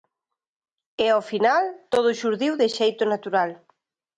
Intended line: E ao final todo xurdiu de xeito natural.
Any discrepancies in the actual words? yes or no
no